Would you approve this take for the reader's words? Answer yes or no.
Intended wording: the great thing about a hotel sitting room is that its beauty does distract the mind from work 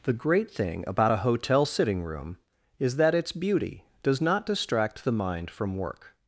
no